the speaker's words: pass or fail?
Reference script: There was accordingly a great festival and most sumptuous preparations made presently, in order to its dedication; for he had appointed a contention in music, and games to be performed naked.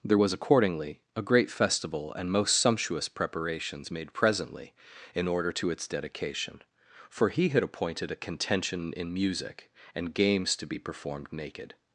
pass